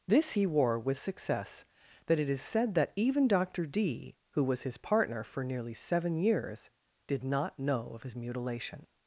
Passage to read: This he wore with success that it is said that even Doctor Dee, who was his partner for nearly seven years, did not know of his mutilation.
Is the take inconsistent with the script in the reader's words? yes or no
no